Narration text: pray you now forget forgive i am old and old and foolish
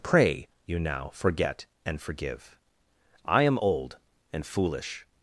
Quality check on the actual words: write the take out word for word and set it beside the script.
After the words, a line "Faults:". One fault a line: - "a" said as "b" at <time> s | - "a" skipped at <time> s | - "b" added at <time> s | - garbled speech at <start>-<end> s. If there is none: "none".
pray you now forget and forgive i am old and foolish
Faults:
- "and" added at 1.9 s
- "old and" skipped at 4.4 s